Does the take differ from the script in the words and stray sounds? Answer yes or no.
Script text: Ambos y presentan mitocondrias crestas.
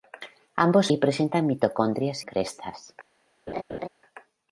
yes